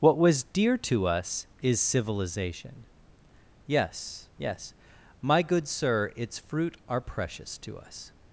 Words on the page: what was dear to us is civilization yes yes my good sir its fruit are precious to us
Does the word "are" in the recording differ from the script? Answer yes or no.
no